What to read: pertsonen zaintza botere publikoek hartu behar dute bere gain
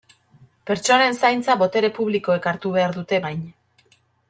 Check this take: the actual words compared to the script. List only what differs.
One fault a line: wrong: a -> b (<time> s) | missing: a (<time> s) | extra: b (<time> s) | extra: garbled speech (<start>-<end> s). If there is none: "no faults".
missing: bere (3.2 s)